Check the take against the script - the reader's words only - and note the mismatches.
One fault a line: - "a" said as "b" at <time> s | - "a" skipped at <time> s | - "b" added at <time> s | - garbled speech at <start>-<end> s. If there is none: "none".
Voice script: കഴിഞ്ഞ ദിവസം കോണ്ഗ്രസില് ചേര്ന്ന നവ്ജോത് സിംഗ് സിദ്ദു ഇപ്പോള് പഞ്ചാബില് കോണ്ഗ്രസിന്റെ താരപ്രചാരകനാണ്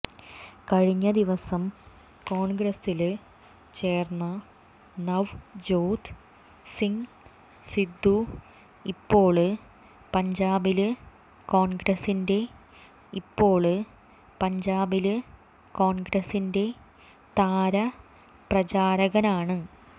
- "ഇപ്പോള് പഞ്ചാബില് കോണ്ഗ്രസിന്റെ" added at 13.1 s